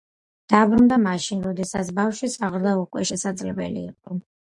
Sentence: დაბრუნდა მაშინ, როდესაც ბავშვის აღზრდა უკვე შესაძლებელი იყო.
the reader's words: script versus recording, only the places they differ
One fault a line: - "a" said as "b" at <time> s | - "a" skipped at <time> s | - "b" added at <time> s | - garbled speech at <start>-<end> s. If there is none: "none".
none